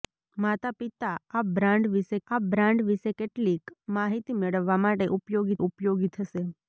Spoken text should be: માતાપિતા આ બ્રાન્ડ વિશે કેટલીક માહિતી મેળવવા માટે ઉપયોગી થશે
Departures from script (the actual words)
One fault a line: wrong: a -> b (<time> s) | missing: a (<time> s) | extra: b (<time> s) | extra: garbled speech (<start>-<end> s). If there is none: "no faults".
extra: આ બ્રાન્ડ વિશે (2.3 s)
extra: ઉપયોગી (5.6 s)